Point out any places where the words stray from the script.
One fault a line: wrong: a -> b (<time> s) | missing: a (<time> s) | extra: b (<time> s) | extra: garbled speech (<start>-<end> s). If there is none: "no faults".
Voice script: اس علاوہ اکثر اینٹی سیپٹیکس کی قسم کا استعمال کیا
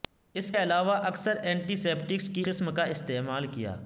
no faults